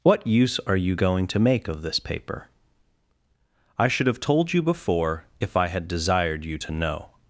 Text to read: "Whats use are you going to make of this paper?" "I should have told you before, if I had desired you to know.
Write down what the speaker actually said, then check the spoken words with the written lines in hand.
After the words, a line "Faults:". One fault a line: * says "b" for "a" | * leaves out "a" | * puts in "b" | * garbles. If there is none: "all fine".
"What use are you going to make of this paper?" "I should have told you before, if I had desired you to know.
Faults:
* says "What" for "Whats"